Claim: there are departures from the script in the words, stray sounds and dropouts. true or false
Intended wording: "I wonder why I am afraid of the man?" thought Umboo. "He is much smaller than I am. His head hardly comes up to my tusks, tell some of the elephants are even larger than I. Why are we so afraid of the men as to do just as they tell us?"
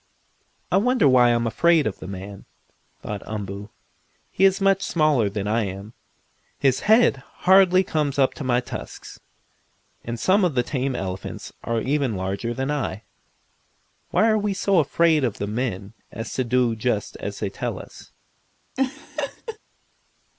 true